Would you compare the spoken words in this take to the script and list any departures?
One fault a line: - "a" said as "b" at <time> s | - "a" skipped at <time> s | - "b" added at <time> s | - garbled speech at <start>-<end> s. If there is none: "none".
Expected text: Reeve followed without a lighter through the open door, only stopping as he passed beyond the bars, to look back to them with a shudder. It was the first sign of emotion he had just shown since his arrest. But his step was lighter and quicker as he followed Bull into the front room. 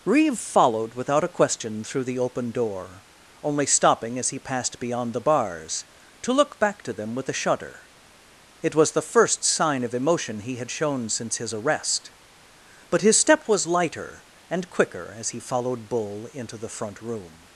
- "lighter" said as "question" at 1.3 s
- "just" skipped at 10.7 s